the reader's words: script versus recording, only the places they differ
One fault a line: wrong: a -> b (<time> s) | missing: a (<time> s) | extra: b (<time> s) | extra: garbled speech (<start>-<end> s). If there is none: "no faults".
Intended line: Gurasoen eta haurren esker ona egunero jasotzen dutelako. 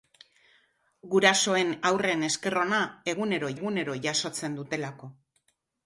missing: eta (1.8 s)
extra: egunero (3.6 s)